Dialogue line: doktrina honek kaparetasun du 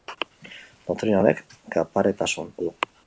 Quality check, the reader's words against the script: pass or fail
pass